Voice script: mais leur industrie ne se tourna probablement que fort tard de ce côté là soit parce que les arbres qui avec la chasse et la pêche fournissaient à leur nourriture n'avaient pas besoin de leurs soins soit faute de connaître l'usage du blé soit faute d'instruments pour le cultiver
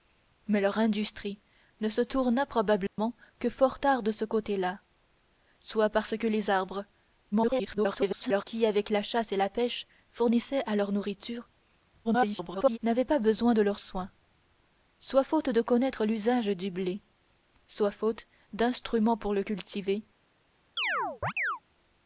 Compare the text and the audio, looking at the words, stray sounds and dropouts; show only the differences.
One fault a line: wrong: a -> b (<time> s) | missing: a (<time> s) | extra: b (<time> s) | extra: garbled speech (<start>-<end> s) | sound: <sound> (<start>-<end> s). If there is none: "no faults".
sound: dropout (2.9-3.0 s)
extra: garbled speech (7.3-8.4 s)
extra: garbled speech (12.0-12.8 s)
sound: chirp (20.8-21.6 s)